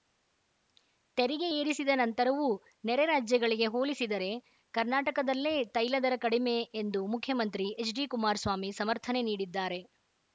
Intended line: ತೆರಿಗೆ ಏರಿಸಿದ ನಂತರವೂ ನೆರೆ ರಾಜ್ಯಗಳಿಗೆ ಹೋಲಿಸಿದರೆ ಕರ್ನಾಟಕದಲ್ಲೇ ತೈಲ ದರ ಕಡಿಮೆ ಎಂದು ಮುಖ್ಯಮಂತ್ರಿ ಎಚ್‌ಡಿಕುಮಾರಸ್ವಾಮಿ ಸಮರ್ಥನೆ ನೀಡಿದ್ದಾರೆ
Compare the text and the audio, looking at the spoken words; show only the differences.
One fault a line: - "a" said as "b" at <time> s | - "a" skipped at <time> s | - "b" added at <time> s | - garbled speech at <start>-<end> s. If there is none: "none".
none